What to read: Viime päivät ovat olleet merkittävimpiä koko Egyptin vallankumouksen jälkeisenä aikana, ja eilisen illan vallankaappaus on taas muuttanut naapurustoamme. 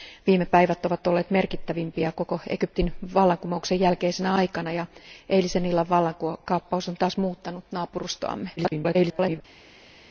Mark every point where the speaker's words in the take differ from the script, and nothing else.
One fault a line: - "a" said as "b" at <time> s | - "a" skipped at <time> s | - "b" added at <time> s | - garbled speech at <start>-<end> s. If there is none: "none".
- garbled speech at 8.6-9.4 s